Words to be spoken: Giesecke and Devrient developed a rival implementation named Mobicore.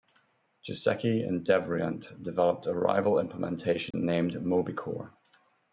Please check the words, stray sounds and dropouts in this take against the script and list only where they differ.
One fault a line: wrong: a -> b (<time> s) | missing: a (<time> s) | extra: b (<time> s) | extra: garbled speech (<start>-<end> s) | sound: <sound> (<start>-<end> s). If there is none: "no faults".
sound: dropout (3.9-3.9 s)